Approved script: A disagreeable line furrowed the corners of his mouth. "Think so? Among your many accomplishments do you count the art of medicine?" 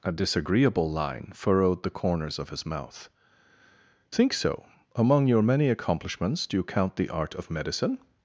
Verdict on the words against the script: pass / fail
pass